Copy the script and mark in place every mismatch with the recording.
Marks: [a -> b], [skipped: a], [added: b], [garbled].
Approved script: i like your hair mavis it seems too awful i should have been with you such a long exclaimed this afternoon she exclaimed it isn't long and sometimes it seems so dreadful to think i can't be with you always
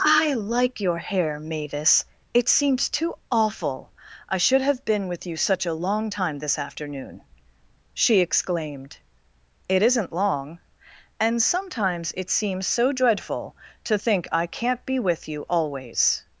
i like your hair mavis it seems too awful i should have been with you such a long [exclaimed -> time] this afternoon she exclaimed it isn't long and sometimes it seems so dreadful to think i can't be with you always